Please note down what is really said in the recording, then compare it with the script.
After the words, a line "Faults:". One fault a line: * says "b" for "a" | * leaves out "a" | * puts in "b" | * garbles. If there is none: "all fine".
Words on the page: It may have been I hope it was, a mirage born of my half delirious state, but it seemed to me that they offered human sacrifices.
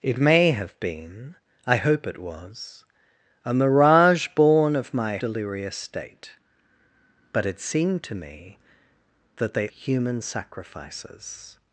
It may have been I hope it was, a mirage born of my delirious state, but it seemed to me that they human sacrifices.
Faults:
* leaves out "half"
* leaves out "offered"